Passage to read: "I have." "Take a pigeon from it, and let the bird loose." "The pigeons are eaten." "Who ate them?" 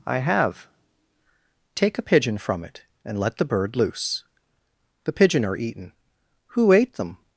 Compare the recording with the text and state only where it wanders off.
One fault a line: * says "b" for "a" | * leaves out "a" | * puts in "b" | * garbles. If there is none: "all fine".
* says "pigeon" for "pigeons"